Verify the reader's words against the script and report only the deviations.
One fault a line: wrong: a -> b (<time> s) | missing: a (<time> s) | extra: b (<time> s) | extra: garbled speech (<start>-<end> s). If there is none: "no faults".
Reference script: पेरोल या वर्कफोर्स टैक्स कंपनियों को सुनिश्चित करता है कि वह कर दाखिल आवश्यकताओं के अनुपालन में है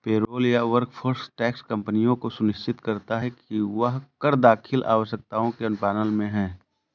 no faults